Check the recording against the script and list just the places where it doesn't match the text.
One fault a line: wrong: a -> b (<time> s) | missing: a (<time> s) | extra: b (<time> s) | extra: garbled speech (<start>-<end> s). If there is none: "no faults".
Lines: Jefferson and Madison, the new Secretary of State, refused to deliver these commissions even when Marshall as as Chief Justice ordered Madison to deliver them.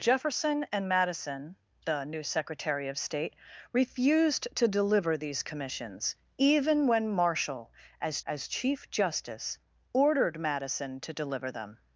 no faults